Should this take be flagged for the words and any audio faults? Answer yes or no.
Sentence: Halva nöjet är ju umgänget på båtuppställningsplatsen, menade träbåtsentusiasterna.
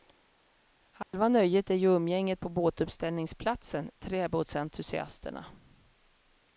yes